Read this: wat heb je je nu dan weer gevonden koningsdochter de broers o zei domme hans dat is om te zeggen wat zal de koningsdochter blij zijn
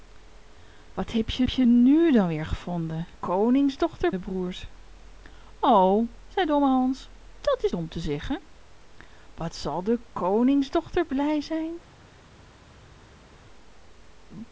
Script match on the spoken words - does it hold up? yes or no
yes